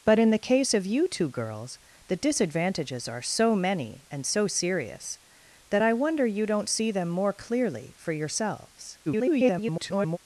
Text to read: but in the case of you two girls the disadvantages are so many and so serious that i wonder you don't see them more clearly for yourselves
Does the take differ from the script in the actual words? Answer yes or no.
yes